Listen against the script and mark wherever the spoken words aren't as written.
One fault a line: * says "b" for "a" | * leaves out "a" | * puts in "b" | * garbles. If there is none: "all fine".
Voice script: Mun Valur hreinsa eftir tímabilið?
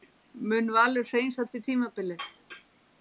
all fine